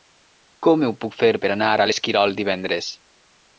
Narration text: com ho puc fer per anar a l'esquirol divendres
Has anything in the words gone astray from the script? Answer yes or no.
no